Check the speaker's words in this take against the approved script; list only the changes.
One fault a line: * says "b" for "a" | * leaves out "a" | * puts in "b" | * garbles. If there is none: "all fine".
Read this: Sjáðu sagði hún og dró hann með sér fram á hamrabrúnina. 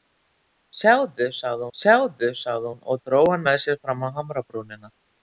* puts in "sjáðu sagði"